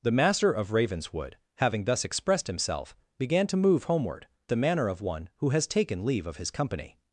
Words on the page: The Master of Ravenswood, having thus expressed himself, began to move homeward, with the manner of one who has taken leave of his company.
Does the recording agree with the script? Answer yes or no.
no